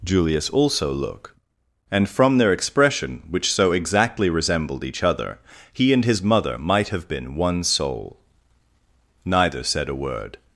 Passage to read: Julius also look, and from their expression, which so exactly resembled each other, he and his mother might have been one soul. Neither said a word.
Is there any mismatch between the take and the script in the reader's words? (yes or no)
no